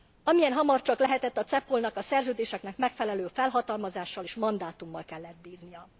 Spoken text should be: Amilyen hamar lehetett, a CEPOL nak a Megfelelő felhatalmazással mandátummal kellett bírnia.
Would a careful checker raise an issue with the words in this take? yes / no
yes